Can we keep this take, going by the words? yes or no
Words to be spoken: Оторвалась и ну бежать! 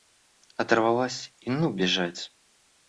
yes